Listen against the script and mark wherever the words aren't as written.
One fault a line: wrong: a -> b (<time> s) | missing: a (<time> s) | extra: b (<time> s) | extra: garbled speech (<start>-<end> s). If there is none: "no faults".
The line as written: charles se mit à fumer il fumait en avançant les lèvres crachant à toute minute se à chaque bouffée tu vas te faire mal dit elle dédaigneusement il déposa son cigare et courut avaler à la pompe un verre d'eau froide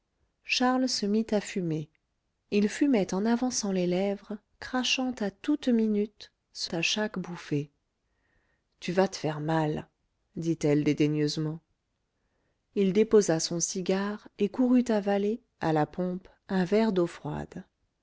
no faults